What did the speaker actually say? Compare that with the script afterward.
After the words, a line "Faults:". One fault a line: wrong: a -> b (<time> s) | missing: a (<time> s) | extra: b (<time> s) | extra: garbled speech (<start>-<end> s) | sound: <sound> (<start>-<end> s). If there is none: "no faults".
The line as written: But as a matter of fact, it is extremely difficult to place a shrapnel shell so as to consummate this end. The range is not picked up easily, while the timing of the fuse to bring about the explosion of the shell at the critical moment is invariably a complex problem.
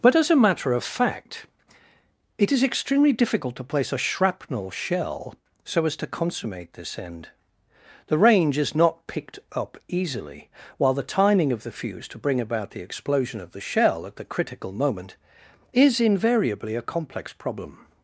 But as a matter of fact, it is extremely difficult to place a shrapnel shell so as to consummate this end. The range is not picked up easily, while the timing of the fuse to bring about the explosion of the shell at the critical moment is invariably a complex problem.
Faults:
no faults